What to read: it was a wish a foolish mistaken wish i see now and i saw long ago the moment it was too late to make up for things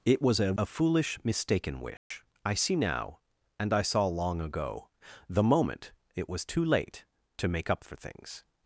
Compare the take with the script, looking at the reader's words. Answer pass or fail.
fail